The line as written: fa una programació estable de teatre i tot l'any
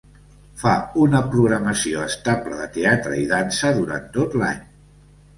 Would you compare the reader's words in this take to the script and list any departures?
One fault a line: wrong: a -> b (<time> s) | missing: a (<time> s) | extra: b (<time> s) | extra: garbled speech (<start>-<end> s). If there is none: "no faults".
extra: dansa durant (3.3 s)